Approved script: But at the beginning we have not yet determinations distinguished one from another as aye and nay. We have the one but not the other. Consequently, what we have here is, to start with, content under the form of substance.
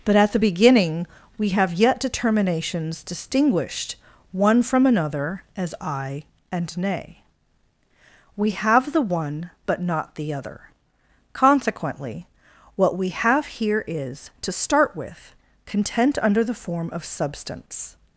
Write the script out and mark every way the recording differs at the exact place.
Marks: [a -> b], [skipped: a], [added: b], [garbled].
But at the beginning we have [skipped: not] yet determinations distinguished one from another as aye and nay. We have the one but not the other. Consequently, what we have here is, to start with, content under the form of substance.